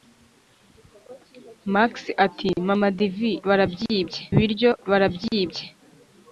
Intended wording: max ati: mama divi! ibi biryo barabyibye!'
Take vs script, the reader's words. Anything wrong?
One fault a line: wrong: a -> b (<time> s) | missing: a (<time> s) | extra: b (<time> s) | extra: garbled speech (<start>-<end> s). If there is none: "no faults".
wrong: ibi -> barabyibye (3.5 s)